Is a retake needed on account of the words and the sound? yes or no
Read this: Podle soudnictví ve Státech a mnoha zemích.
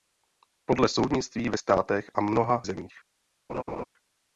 yes